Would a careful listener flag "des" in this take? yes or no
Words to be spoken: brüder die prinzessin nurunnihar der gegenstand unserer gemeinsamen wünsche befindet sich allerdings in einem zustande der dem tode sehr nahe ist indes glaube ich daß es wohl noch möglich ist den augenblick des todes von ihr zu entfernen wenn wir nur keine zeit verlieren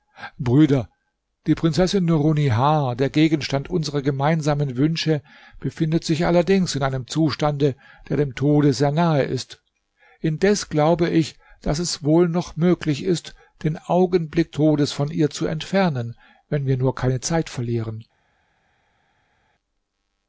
yes